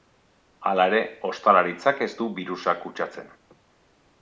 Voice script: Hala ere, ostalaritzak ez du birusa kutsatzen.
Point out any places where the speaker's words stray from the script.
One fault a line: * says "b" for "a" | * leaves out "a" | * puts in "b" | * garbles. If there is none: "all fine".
all fine